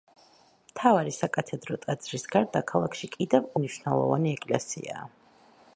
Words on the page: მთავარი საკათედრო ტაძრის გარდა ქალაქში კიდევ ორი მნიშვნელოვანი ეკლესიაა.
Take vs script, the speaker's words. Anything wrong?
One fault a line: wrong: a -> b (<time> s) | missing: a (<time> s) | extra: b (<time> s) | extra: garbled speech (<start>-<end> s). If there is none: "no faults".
missing: ორი (3.5 s)